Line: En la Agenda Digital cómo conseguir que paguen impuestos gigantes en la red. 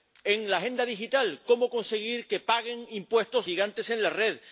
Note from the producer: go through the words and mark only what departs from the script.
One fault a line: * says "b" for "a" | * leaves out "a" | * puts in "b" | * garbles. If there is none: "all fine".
all fine